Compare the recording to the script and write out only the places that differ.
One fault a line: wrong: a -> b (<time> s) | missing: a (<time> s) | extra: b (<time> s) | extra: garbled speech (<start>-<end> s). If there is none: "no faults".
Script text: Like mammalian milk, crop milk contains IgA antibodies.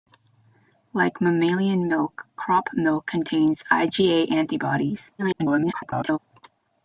extra: garbled speech (5.2-6.2 s)